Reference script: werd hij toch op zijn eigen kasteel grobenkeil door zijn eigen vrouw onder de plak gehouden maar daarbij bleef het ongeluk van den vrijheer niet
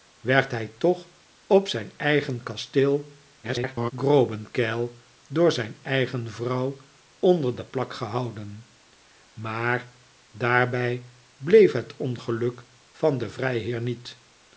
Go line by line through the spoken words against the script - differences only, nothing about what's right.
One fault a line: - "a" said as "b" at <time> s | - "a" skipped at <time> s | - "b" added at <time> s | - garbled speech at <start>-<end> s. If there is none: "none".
- garbled speech at 3.4-3.9 s